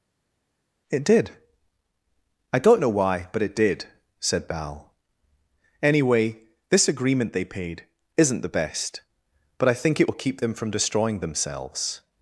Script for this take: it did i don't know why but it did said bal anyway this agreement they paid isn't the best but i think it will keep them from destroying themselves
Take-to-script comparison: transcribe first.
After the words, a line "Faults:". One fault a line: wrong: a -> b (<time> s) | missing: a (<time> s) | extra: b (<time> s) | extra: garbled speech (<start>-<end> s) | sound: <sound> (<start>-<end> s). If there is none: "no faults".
it did i don't know why but it did said bal anyway this agreement they paid isn't the best but i think it will keep them from destroying themselves
Faults:
no faults